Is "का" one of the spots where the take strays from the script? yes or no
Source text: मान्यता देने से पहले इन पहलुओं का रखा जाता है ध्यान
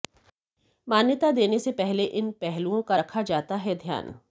no